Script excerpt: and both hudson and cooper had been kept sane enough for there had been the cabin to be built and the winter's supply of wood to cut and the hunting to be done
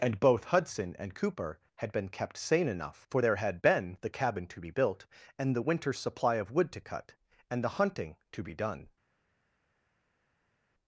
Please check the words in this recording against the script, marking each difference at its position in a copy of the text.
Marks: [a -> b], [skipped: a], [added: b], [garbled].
and both hudson and cooper had been kept sane enough for there had been the cabin to be built and the winter's supply of wood to cut and the hunting to be done